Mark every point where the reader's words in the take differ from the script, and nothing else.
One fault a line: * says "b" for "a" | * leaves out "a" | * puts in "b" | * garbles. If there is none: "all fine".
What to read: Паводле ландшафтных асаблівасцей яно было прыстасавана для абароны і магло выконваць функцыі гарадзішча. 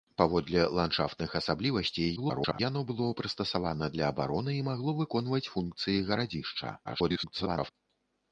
* garbles
* garbles